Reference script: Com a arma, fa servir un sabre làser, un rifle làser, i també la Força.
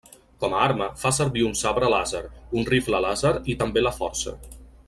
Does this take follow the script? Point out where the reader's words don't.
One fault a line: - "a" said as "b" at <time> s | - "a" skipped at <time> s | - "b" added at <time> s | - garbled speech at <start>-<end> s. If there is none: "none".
none